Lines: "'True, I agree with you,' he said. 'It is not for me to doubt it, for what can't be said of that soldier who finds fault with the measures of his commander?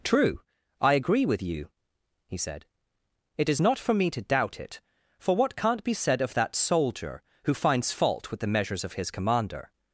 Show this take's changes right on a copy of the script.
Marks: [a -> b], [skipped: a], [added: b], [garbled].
"'True, I agree with you,' he said. 'It is not for me to doubt it, for what can't be said of that soldier who finds fault with the measures of his commander?